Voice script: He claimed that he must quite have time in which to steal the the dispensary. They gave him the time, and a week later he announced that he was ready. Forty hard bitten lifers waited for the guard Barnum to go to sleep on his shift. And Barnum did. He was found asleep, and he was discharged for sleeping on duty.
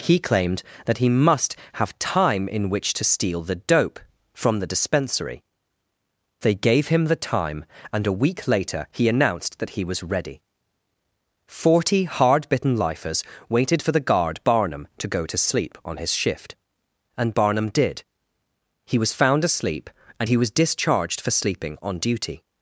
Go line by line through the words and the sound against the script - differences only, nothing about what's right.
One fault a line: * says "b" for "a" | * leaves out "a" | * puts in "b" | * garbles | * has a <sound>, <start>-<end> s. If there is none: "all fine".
* leaves out "quite"
* puts in "dope from"